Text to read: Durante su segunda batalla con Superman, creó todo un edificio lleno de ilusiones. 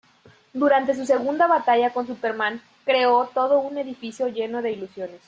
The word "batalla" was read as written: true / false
true